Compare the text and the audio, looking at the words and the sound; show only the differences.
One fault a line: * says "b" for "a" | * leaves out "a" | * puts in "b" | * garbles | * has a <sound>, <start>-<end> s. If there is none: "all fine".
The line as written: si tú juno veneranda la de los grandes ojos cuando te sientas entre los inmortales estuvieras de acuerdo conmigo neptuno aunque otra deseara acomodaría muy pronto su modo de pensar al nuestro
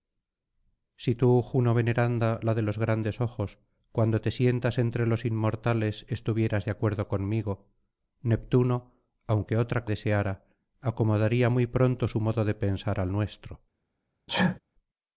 * has a sneeze, 14.3-14.6 s